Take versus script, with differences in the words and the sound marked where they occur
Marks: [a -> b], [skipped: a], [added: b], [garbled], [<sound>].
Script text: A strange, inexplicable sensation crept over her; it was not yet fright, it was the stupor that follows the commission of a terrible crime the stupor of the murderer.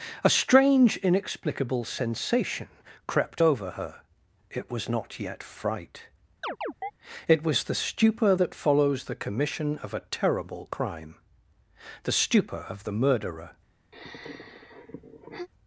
A strange, inexplicable sensation crept over her; it was not yet fright, [chirp] it was the stupor that follows the commission of a terrible crime the stupor of the murderer. [sigh]